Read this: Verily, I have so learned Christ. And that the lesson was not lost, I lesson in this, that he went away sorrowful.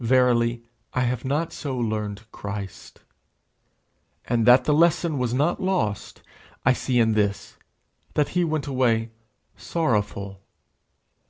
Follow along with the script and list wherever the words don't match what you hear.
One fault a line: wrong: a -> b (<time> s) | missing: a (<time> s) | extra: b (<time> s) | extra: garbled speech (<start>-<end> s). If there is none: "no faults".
extra: not (1.2 s)
wrong: lesson -> see (6.7 s)